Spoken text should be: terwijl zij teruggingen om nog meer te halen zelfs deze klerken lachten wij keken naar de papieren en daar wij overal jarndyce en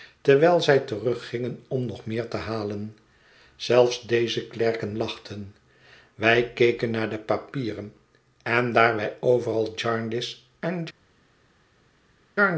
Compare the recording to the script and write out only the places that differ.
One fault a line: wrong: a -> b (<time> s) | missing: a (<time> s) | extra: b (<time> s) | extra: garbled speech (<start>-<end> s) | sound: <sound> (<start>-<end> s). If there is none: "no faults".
no faults